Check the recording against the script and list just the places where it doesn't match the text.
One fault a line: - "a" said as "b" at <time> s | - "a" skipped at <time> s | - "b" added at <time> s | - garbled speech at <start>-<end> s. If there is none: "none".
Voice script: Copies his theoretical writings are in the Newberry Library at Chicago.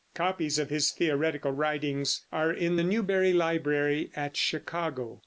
- "of" added at 0.6 s